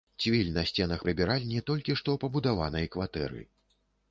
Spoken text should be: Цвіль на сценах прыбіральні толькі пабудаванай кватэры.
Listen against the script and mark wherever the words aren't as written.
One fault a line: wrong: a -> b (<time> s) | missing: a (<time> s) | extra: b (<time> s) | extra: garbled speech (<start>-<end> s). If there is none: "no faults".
extra: што (2.0 s)